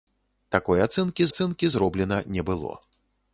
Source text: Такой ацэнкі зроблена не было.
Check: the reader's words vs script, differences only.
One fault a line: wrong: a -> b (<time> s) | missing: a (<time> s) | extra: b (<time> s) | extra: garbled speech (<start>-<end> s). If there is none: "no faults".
extra: ацэнкі (1.3 s)